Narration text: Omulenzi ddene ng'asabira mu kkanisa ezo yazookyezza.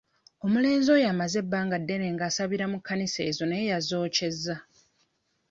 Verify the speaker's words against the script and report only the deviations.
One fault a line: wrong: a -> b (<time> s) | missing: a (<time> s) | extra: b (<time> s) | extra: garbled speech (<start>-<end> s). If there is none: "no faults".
extra: oyo amaze ebbanga (0.9 s)
extra: naye (3.5 s)